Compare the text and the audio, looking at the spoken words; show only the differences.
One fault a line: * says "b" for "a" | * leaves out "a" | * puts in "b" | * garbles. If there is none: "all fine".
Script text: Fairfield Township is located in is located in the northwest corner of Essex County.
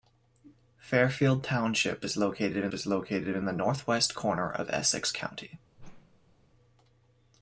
all fine